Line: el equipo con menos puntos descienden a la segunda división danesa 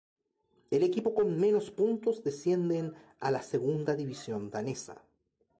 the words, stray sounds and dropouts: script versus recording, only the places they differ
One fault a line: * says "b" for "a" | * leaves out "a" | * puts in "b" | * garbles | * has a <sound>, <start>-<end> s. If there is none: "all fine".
all fine